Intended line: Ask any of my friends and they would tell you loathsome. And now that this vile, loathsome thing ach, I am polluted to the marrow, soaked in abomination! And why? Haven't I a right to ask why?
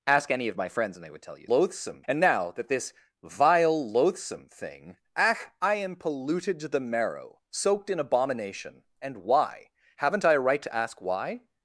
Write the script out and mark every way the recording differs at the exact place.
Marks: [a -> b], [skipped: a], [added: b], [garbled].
Ask any of my friends and they would tell you loathsome. And now that this vile, loathsome thing ach, I am polluted to the marrow, soaked in abomination! And why? Haven't I a right to ask why?